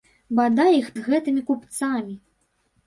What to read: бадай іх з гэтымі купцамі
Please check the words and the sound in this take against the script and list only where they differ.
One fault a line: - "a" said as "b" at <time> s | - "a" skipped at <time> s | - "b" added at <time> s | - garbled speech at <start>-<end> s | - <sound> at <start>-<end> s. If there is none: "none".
none